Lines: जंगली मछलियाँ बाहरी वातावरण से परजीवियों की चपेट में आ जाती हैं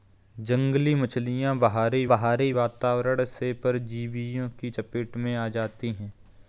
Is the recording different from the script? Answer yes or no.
yes